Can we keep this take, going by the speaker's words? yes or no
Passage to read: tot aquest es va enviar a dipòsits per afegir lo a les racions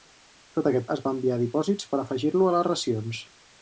yes